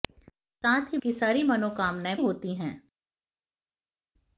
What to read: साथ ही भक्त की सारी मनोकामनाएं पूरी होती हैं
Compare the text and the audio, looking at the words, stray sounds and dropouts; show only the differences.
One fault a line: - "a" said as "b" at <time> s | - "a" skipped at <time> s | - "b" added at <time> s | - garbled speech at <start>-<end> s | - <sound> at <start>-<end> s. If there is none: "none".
- "भक्त" skipped at 1.0 s
- "पूरी" skipped at 2.2 s